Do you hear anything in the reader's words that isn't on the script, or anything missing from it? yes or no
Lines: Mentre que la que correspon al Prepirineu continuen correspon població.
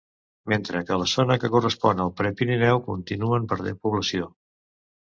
yes